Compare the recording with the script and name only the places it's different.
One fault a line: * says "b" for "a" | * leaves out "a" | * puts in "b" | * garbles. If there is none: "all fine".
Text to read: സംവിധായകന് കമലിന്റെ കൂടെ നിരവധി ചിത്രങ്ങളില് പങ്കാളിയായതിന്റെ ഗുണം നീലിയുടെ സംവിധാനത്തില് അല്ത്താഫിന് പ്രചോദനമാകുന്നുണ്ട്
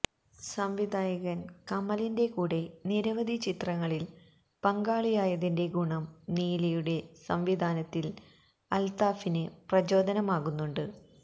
all fine